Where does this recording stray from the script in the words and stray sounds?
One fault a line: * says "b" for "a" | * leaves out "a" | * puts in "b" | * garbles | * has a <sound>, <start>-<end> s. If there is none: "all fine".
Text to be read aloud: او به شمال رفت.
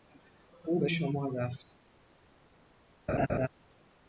* has a laugh, 3.1-3.5 s